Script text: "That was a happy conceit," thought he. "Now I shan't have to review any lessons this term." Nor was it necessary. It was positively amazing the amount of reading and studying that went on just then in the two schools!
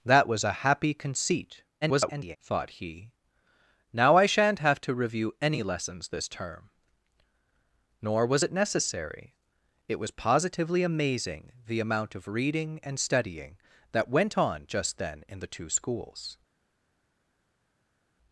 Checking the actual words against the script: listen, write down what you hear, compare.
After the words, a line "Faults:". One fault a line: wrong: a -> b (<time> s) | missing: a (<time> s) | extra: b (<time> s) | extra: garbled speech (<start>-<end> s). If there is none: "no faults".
"That was a happy conceit," [garbled] thought he. "Now I shan't have to review any lessons this term." Nor was it necessary. It was positively amazing the amount of reading and studying that went on just then in the two schools!
Faults:
extra: garbled speech (1.8-2.4 s)